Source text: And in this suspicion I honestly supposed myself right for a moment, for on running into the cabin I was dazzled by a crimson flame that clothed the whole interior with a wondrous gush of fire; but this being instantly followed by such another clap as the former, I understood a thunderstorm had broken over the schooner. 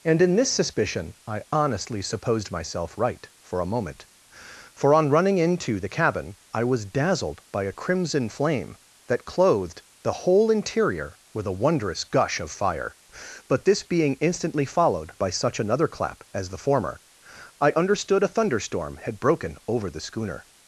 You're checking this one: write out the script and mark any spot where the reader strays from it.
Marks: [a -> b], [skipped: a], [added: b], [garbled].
And in this suspicion I honestly supposed myself right for a moment, for on running into the cabin I was dazzled by a crimson flame that clothed the whole interior with a wondrous gush of fire; but this being instantly followed by such another clap as the former, I understood a thunderstorm had broken over the schooner.